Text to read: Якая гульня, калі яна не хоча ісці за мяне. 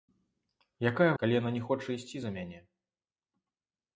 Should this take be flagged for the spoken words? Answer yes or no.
yes